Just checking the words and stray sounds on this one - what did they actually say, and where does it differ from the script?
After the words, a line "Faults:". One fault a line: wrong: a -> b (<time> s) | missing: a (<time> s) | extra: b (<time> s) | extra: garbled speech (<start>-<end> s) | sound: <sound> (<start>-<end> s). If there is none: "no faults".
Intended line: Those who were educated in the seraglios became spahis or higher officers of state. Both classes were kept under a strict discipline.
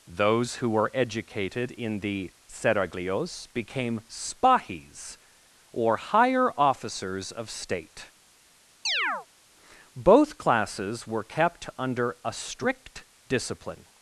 Those who were educated in the seraglios became spahis or higher officers of state. Both classes were kept under a strict discipline.
Faults:
sound: chirp (8.9-9.3 s)